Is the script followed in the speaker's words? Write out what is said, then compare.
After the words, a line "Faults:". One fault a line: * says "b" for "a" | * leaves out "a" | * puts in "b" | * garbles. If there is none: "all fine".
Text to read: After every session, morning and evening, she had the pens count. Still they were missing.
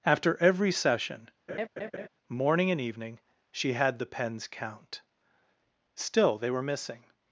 After every session, morning and evening, she had the pens count. Still they were missing.
Faults:
all fine